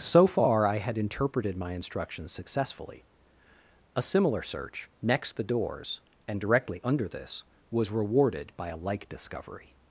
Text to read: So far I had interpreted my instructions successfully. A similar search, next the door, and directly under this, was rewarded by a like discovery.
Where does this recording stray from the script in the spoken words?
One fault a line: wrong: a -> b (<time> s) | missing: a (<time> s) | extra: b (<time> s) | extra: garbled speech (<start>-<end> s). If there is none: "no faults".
wrong: door -> doors (5.4 s)